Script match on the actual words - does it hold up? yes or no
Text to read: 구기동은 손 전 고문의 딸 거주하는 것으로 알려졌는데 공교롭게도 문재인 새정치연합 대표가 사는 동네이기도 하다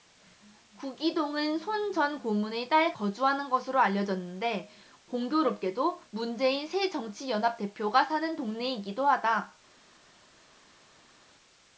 yes